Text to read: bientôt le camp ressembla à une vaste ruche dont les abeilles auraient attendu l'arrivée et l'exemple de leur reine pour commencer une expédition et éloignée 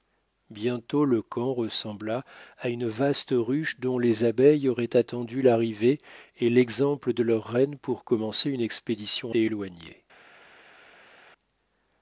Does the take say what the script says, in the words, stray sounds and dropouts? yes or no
yes